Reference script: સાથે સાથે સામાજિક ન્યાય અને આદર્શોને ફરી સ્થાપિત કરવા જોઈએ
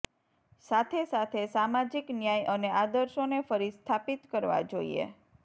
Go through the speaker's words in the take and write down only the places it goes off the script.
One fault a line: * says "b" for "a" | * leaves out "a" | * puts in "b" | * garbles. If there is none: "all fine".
all fine